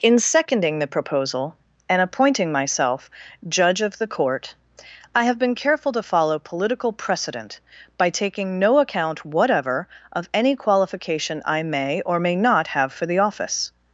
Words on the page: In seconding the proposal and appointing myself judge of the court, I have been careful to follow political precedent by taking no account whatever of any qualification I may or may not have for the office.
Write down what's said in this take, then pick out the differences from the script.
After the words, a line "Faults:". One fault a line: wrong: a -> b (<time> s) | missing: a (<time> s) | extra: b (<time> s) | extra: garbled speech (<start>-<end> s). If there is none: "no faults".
In seconding the proposal and appointing myself judge of the court, I have been careful to follow political precedent by taking no account whatever of any qualification I may or may not have for the office.
Faults:
no faults